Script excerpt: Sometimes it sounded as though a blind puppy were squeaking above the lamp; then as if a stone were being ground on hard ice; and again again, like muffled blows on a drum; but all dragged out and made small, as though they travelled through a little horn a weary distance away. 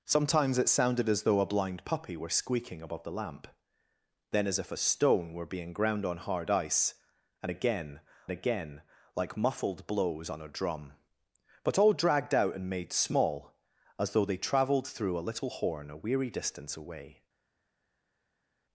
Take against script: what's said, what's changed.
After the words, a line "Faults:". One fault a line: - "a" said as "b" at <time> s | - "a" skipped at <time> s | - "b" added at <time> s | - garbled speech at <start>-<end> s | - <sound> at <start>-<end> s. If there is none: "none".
Sometimes it sounded as though a blind puppy were squeaking above the lamp; then as if a stone were being ground on hard ice; and again again, like muffled blows on a drum; but all dragged out and made small, as though they travelled through a little horn a weary distance away.
Faults:
none